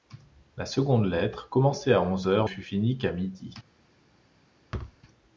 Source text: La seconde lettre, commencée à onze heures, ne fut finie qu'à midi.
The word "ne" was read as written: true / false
false